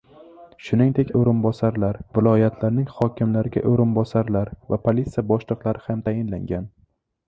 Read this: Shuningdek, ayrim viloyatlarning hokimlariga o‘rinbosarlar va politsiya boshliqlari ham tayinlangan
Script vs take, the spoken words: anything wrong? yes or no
yes